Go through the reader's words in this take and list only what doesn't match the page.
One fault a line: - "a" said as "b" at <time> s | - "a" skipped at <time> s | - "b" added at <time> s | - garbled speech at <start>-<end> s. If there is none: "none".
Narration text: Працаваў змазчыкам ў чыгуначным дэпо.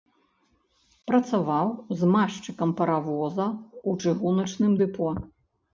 - "паравоза" added at 2.8 s